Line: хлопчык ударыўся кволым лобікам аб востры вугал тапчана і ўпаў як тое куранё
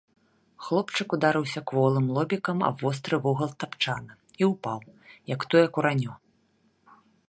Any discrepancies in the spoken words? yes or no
no